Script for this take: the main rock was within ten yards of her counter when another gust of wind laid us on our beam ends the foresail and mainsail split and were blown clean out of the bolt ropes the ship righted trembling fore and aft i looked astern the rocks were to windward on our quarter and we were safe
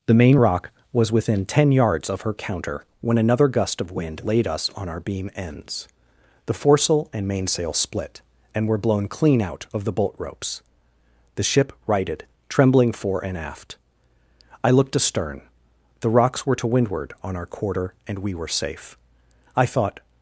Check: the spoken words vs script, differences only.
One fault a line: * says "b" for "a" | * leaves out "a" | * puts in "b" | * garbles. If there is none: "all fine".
* puts in "i thought"